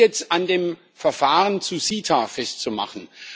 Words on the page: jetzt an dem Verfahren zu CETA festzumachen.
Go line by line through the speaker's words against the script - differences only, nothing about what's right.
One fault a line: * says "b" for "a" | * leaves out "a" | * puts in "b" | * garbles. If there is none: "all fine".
all fine